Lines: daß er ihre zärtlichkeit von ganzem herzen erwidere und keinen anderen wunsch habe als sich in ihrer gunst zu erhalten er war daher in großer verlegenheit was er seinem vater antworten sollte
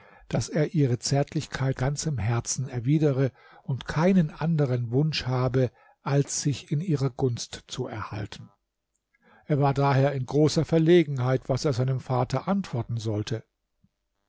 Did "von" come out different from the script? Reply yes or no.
yes